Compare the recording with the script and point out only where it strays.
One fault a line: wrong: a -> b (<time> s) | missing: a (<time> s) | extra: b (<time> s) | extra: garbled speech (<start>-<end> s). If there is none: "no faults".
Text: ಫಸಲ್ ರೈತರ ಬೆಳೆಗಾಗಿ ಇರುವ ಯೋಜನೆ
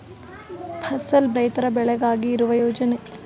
no faults